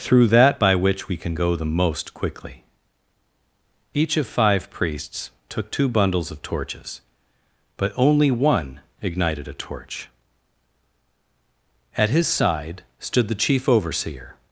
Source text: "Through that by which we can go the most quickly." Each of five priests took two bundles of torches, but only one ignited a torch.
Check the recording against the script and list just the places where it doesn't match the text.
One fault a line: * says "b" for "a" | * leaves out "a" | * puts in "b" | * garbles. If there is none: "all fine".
* puts in "At his side stood the chief overseer"